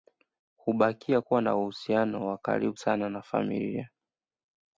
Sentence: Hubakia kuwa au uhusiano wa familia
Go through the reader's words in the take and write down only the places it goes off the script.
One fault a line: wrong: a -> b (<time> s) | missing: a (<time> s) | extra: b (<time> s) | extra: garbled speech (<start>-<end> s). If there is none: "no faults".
wrong: au -> na (1.4 s)
extra: karibu sana na (2.4 s)